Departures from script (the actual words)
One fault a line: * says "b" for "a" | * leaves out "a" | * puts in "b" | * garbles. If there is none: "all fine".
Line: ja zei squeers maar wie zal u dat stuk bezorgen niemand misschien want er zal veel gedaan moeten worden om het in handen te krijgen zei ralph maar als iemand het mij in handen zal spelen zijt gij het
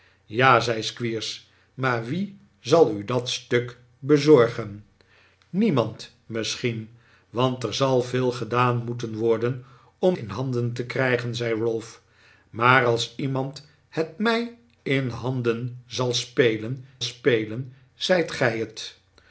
* leaves out "het"
* puts in "spelen"